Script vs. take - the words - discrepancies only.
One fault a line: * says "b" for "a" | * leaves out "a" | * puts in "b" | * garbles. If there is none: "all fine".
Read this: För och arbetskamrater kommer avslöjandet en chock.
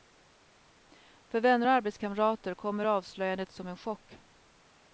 * puts in "vänner"
* puts in "som"